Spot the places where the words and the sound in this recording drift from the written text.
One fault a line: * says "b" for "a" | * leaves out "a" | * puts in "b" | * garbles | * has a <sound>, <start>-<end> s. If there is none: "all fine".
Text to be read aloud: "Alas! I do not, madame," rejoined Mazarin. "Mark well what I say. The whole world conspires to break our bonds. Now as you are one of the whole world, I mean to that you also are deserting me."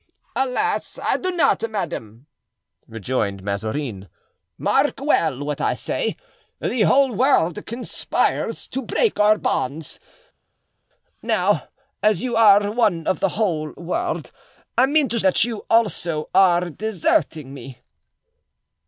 all fine